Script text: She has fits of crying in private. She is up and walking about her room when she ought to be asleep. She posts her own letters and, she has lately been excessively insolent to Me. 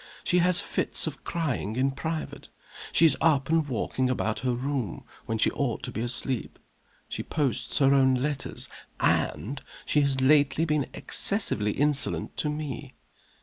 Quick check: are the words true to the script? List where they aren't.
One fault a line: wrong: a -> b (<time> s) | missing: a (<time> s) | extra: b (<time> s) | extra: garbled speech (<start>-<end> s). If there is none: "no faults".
no faults